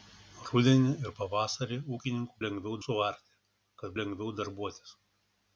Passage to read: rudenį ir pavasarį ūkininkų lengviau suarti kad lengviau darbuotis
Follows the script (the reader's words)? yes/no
yes